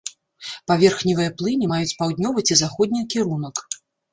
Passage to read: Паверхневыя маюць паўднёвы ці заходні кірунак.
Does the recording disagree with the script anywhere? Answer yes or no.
yes